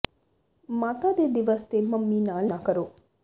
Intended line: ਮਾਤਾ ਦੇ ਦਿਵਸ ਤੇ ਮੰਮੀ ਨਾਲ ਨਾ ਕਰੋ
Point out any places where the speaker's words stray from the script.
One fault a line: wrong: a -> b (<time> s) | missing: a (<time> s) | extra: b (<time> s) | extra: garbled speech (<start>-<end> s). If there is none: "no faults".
no faults